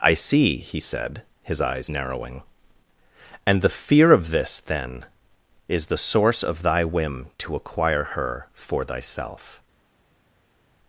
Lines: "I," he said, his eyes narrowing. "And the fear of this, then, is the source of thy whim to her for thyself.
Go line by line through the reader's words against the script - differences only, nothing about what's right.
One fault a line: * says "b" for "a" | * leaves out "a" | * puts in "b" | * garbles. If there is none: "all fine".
* puts in "see"
* puts in "acquire"